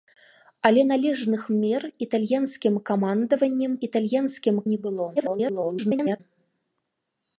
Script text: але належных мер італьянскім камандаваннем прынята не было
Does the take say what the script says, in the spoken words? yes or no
no